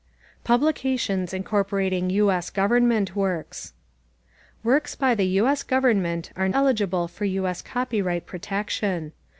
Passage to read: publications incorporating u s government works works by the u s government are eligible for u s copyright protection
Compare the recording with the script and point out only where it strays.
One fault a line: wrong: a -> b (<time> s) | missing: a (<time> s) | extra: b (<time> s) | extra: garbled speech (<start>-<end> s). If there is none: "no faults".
no faults